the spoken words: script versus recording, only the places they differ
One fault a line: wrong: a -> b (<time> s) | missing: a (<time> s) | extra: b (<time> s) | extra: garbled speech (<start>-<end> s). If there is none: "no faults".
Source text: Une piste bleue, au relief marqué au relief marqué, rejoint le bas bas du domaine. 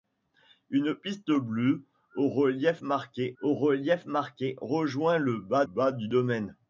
no faults